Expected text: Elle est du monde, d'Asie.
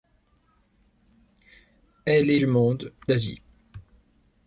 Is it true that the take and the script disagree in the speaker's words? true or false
false